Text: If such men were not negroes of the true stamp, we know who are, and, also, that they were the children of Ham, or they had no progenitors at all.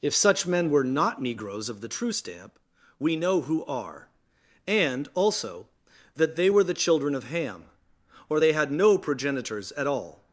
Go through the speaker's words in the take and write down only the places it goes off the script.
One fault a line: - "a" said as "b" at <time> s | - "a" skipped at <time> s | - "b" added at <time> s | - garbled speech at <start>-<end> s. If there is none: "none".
none